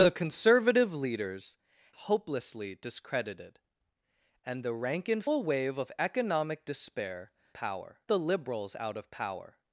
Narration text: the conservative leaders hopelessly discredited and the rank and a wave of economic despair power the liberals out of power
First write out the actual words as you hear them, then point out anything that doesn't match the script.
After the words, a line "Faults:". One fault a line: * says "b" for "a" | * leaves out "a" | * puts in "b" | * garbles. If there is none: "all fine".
the conservative leaders hopelessly discredited and the rank and a wave of economic despair power the liberals out of power
Faults:
all fine